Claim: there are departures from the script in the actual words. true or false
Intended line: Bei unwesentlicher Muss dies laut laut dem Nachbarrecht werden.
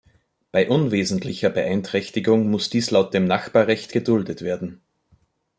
true